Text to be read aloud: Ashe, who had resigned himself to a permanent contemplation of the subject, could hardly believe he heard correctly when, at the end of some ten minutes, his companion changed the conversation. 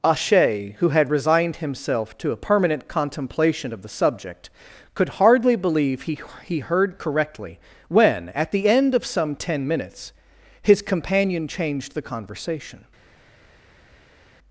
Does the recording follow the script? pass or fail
fail